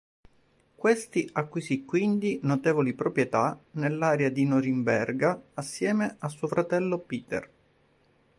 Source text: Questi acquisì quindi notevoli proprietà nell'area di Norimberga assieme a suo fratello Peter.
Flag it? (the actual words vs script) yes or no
no